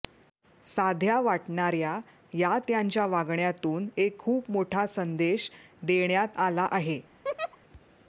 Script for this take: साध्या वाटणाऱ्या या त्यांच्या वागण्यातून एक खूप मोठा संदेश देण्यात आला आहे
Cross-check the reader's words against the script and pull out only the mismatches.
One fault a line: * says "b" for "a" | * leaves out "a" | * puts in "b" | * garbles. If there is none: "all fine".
all fine